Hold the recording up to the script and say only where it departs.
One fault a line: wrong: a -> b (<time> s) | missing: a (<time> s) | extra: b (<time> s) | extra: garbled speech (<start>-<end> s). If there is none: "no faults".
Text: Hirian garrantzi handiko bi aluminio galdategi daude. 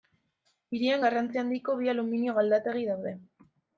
no faults